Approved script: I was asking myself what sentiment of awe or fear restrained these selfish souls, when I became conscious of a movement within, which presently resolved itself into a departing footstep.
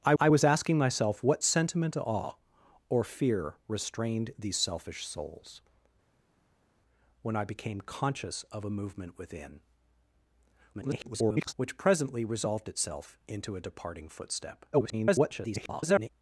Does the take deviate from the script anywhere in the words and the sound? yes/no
yes